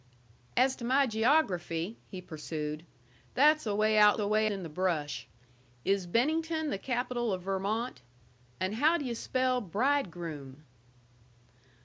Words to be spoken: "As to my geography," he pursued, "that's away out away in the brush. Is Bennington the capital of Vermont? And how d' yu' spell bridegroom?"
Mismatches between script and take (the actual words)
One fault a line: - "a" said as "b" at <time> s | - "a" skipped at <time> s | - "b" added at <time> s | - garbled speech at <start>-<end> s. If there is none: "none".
none